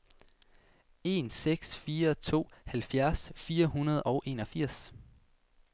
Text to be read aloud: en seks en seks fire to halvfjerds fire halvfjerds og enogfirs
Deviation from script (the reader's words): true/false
true